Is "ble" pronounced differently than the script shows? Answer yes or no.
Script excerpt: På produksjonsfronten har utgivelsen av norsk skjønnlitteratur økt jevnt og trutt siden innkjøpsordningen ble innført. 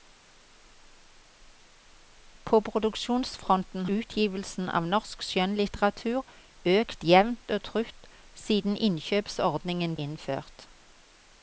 yes